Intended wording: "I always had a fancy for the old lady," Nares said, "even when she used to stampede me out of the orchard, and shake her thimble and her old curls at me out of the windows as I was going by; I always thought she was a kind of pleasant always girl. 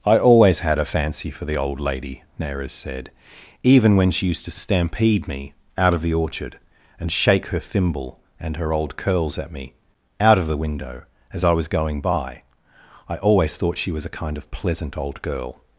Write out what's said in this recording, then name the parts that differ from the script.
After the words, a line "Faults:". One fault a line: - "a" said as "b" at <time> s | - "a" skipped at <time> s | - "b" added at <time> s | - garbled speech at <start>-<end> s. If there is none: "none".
"I always had a fancy for the old lady," Nares said, "even when she used to stampede me out of the orchard, and shake her thimble and her old curls at me out of the window as I was going by; I always thought she was a kind of pleasant old girl.
Faults:
- "windows" said as "window" at 10.6 s
- "always" said as "old" at 15.0 s